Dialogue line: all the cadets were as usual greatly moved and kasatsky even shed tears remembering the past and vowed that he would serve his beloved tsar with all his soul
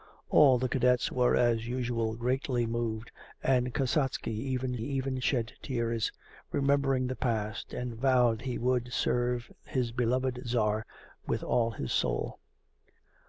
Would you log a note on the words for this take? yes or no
yes